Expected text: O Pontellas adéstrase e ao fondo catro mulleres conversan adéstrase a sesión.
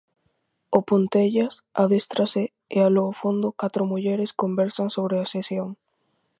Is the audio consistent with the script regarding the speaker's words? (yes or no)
no